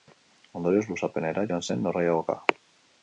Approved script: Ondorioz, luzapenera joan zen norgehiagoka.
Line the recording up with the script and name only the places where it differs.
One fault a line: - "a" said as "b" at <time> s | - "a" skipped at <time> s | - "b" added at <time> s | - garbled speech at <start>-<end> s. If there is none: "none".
none